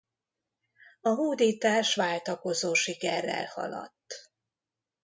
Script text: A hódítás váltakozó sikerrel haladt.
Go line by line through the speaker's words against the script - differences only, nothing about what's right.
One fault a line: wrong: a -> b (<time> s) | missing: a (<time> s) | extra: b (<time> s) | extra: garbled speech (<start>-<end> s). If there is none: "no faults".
no faults